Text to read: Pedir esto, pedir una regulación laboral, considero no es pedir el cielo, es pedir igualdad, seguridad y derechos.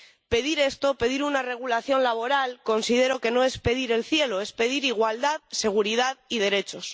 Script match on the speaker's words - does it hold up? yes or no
no